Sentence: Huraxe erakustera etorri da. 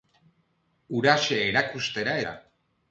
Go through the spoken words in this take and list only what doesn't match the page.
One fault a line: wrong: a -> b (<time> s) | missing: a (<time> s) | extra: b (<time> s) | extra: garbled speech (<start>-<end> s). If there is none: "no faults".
missing: etorri (2.2 s)